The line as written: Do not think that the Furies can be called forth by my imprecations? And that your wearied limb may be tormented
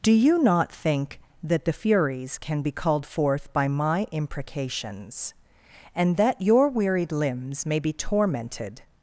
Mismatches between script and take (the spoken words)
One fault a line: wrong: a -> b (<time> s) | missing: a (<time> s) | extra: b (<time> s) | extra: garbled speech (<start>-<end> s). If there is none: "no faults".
extra: you (0.1 s)
wrong: limb -> limbs (7.1 s)